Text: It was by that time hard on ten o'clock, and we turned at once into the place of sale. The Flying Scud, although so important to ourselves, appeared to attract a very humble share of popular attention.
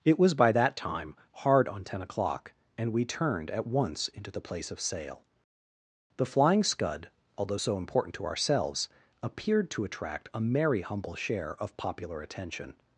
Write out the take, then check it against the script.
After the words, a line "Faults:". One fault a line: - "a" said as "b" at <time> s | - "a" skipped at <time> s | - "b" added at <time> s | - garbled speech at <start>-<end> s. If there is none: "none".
It was by that time hard on ten o'clock, and we turned at once into the place of sale. The Flying Scud, although so important to ourselves, appeared to attract a merry humble share of popular attention.
Faults:
- "very" said as "merry" at 10.4 s